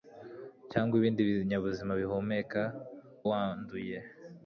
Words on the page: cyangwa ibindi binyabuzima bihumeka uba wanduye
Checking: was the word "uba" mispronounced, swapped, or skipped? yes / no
yes